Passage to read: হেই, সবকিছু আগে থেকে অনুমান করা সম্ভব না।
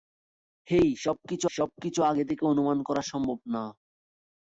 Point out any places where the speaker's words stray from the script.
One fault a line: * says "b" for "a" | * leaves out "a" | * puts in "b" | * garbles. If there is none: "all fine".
* puts in "সবকিছু"